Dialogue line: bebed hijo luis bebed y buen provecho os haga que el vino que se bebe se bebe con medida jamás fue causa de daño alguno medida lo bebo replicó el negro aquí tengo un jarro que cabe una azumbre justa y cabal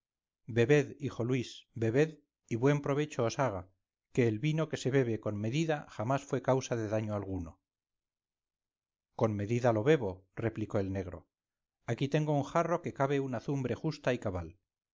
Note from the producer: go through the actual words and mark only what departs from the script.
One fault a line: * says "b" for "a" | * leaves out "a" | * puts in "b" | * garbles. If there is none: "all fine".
* leaves out "se bebe"
* puts in "con"